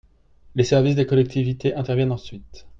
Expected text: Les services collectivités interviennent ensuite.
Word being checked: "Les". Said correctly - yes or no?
yes